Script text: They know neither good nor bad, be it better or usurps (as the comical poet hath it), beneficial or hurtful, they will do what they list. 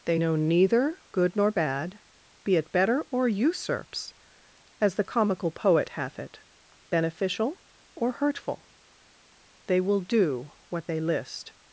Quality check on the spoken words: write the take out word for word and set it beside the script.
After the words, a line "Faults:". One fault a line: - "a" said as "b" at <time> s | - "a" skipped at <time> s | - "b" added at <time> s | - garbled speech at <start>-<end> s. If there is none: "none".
They know neither good nor bad, be it better or usurps (as the comical poet hath it), beneficial or hurtful, they will do what they list.
Faults:
none